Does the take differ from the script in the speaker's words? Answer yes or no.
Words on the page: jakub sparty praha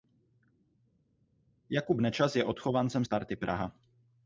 yes